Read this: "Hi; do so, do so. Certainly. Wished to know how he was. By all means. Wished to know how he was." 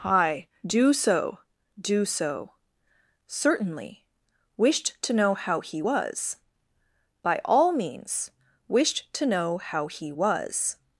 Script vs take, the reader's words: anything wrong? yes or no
no